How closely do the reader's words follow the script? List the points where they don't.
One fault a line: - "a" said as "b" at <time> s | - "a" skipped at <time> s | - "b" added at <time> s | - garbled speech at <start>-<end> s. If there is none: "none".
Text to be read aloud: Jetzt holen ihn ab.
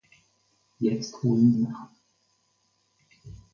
none